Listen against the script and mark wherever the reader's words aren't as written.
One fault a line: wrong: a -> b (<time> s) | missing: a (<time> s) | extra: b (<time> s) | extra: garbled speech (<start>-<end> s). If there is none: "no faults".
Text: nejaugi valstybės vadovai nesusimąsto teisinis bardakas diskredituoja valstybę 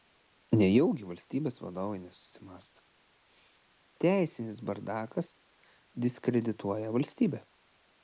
no faults